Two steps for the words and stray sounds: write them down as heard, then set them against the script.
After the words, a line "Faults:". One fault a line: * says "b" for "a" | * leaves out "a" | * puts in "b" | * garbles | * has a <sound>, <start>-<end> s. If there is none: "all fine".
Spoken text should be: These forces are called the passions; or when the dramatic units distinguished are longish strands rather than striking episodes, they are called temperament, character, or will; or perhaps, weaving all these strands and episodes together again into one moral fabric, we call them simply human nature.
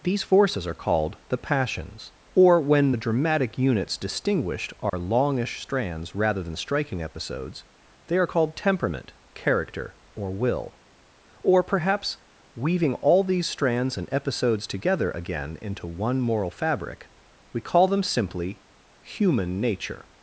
These forces are called the passions; or when the dramatic units distinguished are longish strands rather than striking episodes, they are called temperament, character, or will; or perhaps, weaving all these strands and episodes together again into one moral fabric, we call them simply human nature.
Faults:
* has a dropout, 4.9-4.9 s